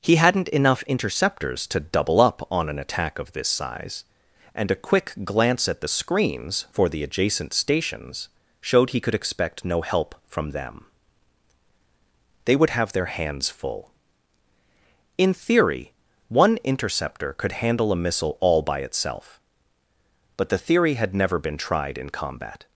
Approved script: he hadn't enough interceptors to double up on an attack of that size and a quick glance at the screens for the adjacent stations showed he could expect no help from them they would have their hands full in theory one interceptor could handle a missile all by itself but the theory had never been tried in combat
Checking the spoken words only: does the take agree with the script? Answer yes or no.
no